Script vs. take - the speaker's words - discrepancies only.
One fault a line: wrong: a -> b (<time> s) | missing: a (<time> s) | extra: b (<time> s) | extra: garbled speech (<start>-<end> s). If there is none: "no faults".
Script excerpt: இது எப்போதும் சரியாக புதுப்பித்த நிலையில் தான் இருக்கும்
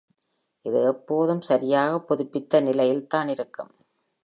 no faults